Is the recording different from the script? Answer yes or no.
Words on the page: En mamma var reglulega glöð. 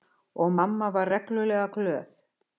yes